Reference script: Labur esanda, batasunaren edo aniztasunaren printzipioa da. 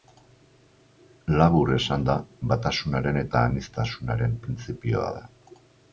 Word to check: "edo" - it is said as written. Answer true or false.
false